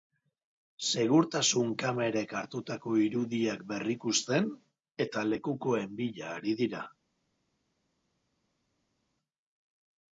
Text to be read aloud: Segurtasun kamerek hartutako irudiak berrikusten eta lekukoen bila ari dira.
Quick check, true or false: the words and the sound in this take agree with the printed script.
true